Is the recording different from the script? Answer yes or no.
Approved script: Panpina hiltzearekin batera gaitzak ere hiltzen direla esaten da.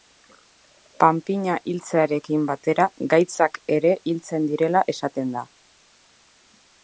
no